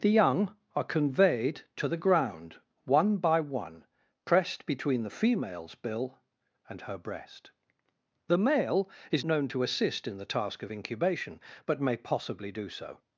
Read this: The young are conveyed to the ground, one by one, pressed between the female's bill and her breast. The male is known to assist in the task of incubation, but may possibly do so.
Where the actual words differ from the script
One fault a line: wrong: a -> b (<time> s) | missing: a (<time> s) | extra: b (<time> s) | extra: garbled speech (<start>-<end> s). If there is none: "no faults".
no faults